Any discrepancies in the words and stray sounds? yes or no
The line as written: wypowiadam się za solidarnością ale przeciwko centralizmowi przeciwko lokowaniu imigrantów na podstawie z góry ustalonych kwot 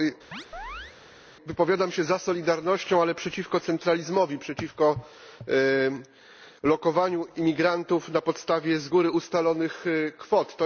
yes